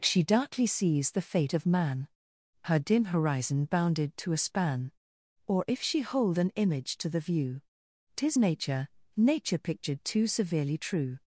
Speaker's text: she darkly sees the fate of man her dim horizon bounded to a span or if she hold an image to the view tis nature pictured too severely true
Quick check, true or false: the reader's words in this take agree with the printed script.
false